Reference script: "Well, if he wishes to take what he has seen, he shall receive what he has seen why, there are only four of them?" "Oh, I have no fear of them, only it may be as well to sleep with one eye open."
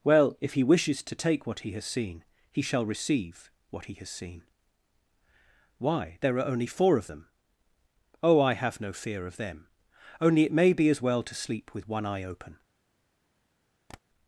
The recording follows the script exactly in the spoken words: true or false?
true